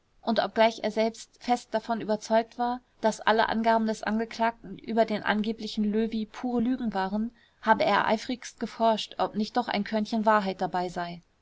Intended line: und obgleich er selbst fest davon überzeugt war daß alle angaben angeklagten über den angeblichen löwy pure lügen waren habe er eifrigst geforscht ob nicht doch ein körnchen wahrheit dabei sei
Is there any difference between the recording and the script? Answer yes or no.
yes